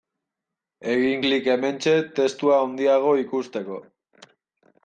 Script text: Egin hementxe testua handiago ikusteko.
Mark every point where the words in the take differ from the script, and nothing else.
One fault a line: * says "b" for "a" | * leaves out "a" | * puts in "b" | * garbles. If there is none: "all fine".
* puts in "klik"